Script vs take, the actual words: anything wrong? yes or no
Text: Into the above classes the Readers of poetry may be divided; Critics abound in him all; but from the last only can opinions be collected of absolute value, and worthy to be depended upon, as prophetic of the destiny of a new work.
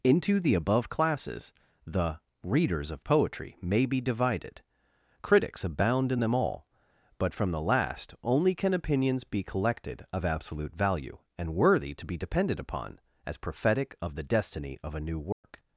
yes